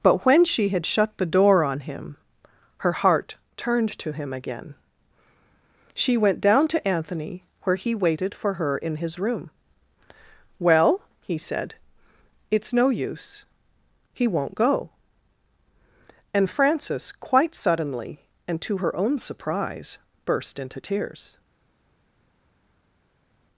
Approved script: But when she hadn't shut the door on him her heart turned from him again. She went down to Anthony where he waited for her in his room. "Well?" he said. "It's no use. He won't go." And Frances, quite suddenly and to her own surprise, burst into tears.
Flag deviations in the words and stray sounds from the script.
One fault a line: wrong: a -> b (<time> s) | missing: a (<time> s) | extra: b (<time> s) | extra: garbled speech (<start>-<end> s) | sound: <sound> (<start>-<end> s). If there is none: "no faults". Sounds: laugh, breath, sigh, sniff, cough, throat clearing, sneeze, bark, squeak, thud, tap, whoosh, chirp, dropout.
wrong: hadn't -> had (0.7 s)
wrong: from -> to (4.0 s)